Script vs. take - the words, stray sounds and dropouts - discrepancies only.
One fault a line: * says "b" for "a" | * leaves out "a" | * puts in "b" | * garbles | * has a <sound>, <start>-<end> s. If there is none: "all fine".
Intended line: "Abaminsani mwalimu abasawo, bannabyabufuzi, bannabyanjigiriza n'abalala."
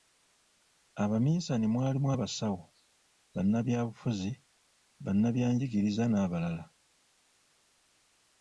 all fine